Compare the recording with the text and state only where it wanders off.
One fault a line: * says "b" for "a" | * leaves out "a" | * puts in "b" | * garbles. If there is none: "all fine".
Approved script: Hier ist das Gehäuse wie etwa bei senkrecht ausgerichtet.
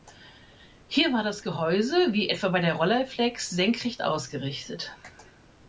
* says "war" for "ist"
* puts in "der Rolleiflex"